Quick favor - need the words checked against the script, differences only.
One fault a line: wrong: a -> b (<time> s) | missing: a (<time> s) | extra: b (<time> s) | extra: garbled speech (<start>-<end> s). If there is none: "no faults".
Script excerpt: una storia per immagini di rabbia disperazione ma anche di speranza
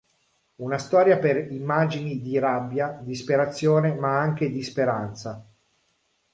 no faults